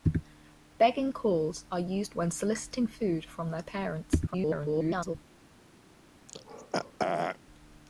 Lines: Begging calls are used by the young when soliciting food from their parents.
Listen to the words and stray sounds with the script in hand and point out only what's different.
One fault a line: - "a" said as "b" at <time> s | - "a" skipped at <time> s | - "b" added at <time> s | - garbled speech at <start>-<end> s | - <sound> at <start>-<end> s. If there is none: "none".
- "by the young" skipped at 2.2 s
- garbled speech at 4.3-5.2 s
- throat clearing at 6.3-7.4 s